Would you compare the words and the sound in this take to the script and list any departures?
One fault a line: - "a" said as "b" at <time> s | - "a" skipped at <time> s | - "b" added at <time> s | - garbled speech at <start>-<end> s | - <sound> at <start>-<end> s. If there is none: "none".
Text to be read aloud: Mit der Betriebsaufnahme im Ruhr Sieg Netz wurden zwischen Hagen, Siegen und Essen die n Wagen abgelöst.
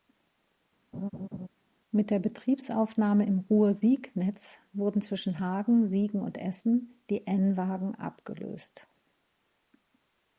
- laugh at 0.9-1.5 s